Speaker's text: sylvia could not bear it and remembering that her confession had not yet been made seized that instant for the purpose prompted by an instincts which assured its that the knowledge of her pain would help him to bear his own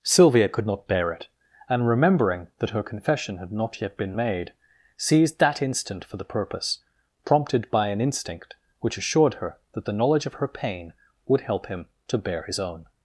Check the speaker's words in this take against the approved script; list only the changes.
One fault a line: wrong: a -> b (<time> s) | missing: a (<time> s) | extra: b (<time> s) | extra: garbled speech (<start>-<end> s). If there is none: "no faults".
wrong: instincts -> instinct (8.0 s)
wrong: its -> her (9.4 s)